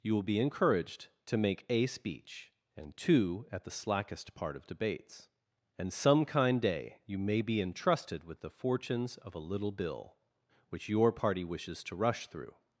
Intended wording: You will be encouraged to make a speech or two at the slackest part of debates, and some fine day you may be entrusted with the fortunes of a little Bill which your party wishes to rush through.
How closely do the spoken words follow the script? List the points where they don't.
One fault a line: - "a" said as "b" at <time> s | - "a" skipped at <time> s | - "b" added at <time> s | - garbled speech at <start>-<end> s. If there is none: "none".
- "or" said as "and" at 2.8 s
- "fine" said as "kind" at 6.2 s